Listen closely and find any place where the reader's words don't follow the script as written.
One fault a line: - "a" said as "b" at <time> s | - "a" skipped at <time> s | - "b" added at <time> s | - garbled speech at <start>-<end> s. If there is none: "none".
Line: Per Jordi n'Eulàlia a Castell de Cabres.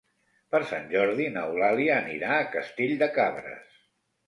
- "Sant" added at 0.7 s
- "anirà" added at 2.0 s